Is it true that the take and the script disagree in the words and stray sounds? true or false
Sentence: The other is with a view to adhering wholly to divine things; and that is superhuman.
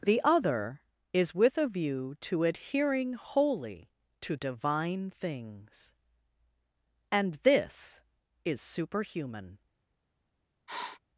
true